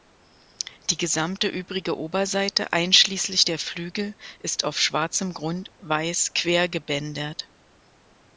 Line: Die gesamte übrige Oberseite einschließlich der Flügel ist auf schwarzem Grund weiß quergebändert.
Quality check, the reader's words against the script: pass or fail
pass